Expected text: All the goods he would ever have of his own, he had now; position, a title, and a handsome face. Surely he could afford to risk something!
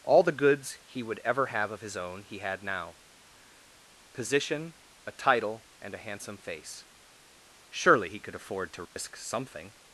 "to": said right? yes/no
yes